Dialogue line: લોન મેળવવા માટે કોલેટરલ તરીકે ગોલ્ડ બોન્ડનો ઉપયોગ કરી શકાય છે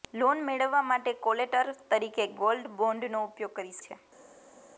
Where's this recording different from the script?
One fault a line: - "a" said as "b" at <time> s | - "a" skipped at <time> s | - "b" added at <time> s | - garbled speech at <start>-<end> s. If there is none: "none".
- "શકાય" skipped at 3.8 s